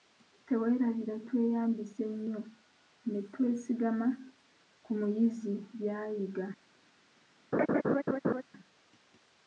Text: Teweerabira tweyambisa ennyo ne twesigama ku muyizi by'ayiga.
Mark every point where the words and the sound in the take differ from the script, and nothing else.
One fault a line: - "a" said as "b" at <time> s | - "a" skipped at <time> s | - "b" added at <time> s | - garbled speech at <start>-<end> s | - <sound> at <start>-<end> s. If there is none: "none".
- laugh at 7.5-8.4 s